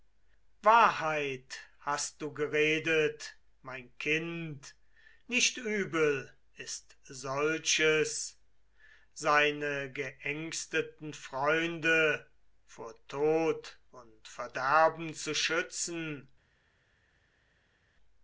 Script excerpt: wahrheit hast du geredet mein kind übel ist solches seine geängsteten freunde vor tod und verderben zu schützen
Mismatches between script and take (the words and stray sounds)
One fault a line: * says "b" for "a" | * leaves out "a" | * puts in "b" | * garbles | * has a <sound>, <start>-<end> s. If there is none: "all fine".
* puts in "nicht"